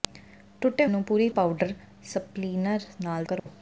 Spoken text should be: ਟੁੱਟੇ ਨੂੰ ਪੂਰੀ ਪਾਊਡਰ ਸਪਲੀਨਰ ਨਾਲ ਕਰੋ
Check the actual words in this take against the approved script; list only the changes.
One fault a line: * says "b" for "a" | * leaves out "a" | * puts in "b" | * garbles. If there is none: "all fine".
all fine